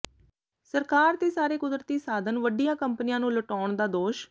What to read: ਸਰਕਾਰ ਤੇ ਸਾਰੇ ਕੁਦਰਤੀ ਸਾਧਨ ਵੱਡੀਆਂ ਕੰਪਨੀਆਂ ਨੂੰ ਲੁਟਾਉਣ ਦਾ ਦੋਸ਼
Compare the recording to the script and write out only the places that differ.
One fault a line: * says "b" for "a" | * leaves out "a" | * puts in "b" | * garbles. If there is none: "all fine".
all fine